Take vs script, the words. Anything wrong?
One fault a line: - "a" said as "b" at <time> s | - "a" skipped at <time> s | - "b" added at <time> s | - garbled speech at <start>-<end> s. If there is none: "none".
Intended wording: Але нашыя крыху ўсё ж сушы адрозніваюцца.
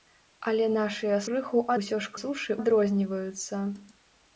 none